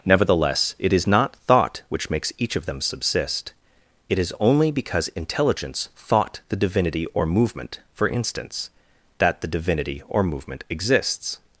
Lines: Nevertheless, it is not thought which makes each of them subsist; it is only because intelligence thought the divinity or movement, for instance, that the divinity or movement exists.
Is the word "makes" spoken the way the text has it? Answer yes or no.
yes